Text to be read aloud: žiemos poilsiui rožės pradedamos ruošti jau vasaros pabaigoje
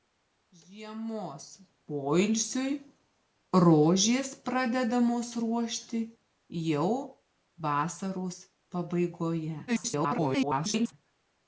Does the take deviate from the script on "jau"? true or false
false